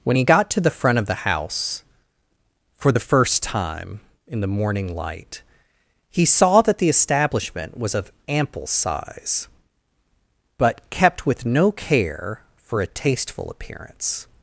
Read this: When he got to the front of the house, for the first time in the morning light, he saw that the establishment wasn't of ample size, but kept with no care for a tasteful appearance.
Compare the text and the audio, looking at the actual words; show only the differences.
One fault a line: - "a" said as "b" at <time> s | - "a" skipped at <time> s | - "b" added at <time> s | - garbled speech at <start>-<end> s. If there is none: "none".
- "wasn't" said as "was" at 7.8 s